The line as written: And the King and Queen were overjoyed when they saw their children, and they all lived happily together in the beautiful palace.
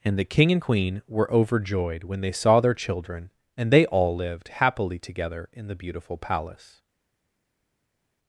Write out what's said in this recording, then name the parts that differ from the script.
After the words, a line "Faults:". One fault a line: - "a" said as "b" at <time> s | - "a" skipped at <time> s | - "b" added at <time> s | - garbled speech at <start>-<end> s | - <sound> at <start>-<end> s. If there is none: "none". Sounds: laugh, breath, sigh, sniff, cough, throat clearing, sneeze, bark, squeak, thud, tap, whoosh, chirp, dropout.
And the King and Queen were overjoyed when they saw their children, and they all lived happily together in the beautiful palace.
Faults:
none